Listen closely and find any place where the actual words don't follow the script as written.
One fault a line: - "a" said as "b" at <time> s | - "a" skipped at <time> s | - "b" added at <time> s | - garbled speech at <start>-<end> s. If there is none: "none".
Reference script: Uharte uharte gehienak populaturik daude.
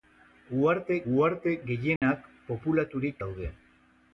none